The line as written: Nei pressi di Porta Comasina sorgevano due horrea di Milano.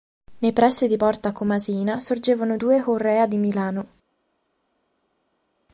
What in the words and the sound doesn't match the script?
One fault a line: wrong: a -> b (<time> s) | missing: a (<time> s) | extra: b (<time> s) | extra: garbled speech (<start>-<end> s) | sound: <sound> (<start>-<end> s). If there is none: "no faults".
no faults